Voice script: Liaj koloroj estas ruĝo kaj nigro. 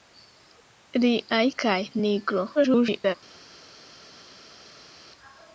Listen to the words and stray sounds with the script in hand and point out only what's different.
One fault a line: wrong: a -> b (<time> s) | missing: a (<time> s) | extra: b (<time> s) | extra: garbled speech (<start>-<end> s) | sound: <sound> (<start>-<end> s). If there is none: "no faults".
missing: koloroj estas ruĝo (1.4 s)
extra: garbled speech (2.5-3.2 s)